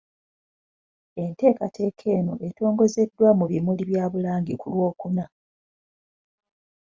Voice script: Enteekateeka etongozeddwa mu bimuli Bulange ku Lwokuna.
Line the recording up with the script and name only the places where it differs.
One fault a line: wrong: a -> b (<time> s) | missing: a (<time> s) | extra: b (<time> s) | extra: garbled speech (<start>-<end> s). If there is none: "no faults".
extra: eno (2.2 s)
extra: bya (3.9 s)